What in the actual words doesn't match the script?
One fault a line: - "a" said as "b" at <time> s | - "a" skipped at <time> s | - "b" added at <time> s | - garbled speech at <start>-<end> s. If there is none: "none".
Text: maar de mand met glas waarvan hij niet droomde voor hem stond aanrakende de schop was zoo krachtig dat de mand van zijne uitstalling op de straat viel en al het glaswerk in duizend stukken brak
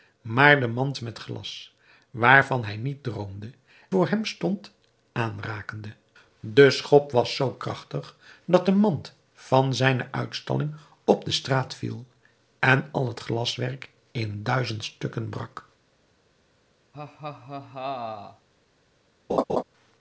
none